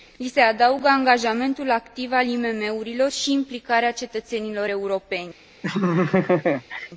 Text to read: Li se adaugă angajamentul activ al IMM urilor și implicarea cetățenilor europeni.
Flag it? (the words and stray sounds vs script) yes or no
yes